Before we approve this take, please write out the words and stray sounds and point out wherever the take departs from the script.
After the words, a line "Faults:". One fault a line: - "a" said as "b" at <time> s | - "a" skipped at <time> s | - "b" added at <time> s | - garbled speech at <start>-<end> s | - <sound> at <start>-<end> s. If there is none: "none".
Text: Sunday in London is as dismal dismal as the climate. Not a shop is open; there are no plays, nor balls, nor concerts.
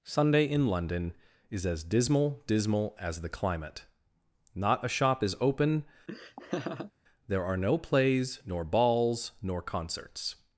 Sunday in London is as dismal dismal as the climate. Not a shop is open; there are no plays, nor balls, nor concerts.
Faults:
- laugh at 6.1-6.9 s